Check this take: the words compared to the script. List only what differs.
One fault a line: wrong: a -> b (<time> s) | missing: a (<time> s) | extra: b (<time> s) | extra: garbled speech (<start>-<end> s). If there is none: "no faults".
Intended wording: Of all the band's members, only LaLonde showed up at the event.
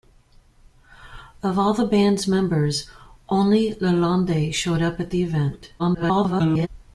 extra: garbled speech (5.8-6.7 s)